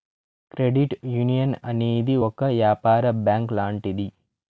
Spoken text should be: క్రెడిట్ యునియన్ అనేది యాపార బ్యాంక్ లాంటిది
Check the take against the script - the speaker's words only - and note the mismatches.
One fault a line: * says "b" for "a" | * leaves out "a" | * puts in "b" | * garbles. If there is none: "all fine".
* puts in "ఒక"